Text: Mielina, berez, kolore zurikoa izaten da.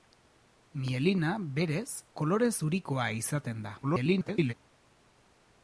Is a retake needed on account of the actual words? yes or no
yes